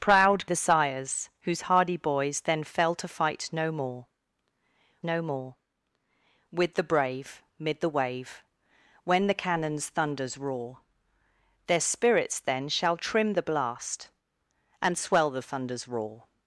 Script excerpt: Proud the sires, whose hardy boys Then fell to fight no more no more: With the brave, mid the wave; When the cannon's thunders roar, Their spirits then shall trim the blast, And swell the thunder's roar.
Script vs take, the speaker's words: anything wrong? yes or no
no